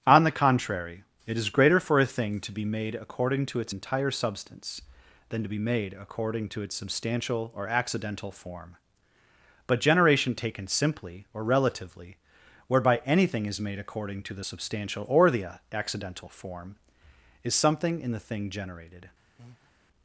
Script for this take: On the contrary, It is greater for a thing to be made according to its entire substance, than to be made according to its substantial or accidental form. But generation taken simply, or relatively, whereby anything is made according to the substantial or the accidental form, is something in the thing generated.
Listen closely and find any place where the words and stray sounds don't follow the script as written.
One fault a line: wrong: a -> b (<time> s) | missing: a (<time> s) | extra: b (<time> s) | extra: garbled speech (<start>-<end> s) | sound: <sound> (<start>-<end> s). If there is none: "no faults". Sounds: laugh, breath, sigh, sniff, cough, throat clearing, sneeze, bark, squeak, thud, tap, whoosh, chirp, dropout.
sound: breath (19.4-19.7 s)